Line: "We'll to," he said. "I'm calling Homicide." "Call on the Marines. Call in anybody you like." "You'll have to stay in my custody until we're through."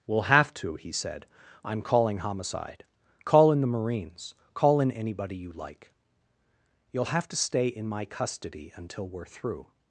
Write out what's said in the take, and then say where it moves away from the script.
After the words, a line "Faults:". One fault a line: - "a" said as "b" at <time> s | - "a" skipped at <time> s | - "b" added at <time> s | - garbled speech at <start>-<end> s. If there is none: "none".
"We'll have to," he said. "I'm calling Homicide." "Call in the Marines. Call in anybody you like." "You'll have to stay in my custody until we're through."
Faults:
- "have" added at 0.2 s
- "on" said as "in" at 3.5 s